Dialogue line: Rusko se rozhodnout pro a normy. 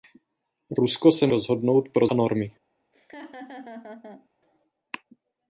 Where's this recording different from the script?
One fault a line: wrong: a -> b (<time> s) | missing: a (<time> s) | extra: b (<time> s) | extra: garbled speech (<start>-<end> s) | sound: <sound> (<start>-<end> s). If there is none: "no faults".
sound: laugh (2.9-4.3 s)